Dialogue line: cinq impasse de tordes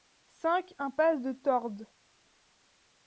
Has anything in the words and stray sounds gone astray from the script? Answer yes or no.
no